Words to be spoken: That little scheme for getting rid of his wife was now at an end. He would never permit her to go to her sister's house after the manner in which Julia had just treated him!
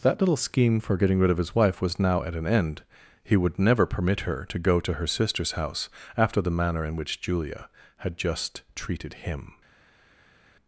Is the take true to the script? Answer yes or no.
yes